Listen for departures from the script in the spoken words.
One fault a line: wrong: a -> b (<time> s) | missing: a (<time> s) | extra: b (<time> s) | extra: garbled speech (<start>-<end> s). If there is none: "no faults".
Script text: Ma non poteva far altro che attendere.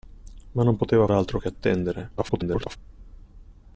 missing: far (1.1 s)
extra: garbled speech (2.2-2.8 s)